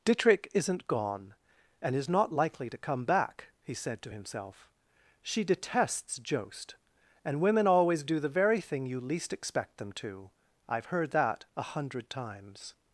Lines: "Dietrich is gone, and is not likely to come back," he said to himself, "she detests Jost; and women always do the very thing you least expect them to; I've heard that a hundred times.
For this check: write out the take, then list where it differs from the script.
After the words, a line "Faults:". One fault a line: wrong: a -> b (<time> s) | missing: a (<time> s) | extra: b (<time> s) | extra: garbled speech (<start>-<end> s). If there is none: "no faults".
"Dietrich isn't gone, and is not likely to come back," he said to himself, "she detests Jost; and women always do the very thing you least expect them to; I've heard that a hundred times.
Faults:
wrong: is -> isn't (0.5 s)